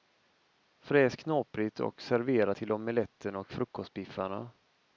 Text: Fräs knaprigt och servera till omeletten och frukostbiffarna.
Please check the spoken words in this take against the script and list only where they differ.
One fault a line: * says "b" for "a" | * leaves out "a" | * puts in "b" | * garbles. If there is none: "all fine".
all fine